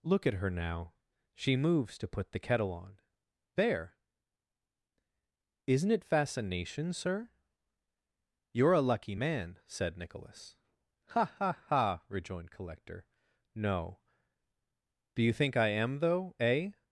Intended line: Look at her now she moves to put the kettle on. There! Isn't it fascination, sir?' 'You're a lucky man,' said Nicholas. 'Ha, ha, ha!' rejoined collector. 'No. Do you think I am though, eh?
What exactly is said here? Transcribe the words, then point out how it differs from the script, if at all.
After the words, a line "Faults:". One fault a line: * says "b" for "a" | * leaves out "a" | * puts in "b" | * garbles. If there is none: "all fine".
Look at her now she moves to put the kettle on. There! Isn't it fascination, sir?' 'You're a lucky man,' said Nicholas. 'Ha, ha, ha!' rejoined collector. 'No. Do you think I am though, eh?
Faults:
all fine